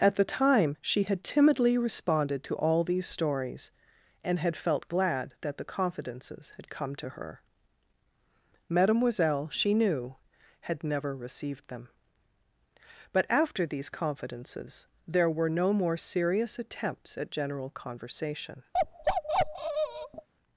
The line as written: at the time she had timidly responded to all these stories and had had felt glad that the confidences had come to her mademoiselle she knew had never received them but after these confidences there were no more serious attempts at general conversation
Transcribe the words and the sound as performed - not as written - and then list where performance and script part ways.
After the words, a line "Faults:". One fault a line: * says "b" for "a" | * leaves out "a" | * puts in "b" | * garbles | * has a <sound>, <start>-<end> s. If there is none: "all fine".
at the time she had timidly responded to all these stories and had felt glad that the confidences had come to her mademoiselle she knew had never received them but after these confidences there were no more serious attempts at general conversation
Faults:
* leaves out "had"
* has a bark, 18.7-20.3 s